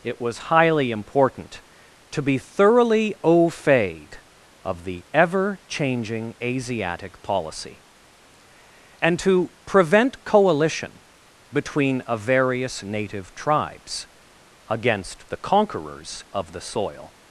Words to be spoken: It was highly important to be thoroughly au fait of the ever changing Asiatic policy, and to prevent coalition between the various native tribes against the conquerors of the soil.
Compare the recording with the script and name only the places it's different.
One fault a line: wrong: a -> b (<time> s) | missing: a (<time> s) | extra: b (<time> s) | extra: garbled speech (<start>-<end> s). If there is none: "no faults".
wrong: the -> a (12.1 s)